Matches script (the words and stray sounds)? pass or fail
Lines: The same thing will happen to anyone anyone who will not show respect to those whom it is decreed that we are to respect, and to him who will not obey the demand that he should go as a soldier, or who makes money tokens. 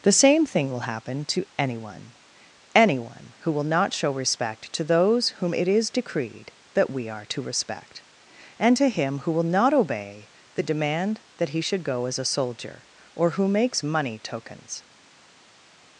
pass